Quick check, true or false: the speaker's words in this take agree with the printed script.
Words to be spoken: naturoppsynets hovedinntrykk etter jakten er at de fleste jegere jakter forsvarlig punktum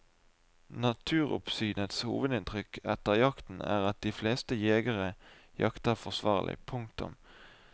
true